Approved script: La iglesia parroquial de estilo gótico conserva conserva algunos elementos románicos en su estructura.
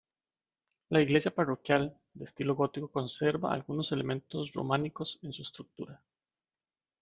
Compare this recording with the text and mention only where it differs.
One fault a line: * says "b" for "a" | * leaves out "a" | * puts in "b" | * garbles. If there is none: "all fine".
* leaves out "conserva"